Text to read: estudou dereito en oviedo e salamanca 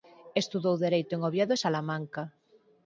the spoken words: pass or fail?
pass